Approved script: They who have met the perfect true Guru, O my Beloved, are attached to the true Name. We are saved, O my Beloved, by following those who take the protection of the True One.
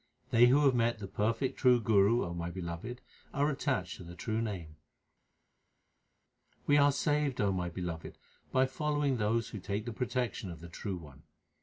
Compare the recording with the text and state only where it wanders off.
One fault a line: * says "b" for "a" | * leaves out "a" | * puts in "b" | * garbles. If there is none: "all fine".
all fine